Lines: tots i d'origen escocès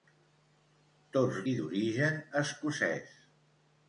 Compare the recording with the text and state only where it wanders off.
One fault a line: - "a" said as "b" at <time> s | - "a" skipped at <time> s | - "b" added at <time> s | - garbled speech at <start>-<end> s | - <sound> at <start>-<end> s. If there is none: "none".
none